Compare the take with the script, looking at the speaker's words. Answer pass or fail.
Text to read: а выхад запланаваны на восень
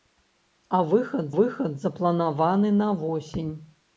fail